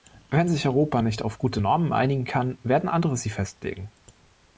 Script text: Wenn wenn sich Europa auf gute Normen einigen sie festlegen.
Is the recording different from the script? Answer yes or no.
yes